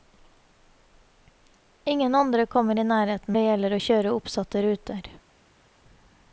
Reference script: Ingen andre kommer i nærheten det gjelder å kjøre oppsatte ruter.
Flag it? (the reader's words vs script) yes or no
no